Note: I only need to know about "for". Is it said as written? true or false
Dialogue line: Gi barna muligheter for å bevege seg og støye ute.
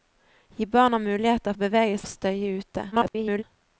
false